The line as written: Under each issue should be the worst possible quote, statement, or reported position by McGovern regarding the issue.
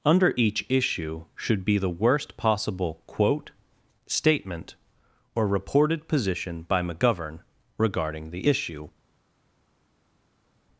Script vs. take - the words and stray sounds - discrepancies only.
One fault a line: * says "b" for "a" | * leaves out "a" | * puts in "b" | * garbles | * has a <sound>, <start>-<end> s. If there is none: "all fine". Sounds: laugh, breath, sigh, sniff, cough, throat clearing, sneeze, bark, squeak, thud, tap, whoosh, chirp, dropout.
all fine